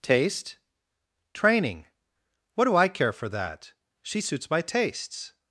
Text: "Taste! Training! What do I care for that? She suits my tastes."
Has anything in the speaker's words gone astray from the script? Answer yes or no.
no